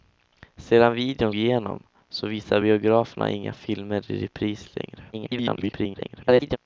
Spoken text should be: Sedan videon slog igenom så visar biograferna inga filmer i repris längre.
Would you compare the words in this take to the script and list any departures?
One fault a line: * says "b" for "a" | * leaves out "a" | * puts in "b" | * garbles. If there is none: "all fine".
* leaves out "slog"
* garbles